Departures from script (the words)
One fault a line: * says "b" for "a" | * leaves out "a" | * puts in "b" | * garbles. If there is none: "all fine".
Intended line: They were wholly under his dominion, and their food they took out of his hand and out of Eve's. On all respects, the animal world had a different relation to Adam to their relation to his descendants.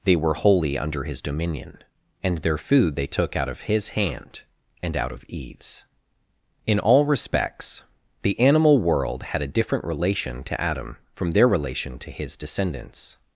* says "In" for "On"
* says "from" for "to"